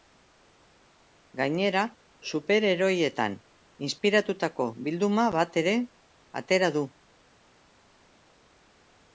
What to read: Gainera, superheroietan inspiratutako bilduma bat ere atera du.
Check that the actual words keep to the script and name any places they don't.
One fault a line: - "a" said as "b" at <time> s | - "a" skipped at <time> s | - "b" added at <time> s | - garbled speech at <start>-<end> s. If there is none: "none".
none